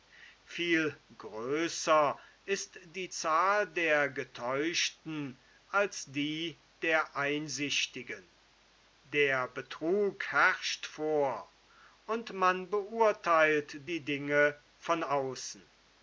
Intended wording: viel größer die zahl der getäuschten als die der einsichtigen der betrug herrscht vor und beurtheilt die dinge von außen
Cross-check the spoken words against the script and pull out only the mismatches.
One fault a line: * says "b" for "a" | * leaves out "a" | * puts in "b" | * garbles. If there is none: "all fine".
* puts in "ist"
* puts in "man"